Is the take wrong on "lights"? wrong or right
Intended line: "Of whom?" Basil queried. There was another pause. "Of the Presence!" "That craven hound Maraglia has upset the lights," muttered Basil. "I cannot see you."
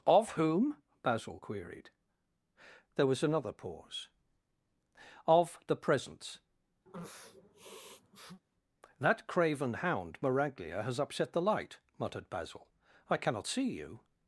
wrong